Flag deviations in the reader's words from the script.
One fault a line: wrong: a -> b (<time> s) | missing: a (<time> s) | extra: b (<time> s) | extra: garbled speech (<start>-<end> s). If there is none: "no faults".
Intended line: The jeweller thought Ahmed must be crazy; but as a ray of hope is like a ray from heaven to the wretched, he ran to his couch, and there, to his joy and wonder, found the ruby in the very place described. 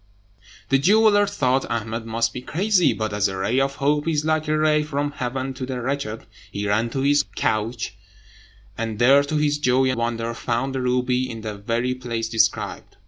missing: and (9.9 s)